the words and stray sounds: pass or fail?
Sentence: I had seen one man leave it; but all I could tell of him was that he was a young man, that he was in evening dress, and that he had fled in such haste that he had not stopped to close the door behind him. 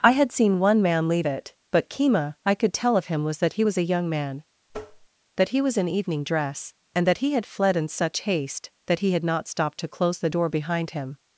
fail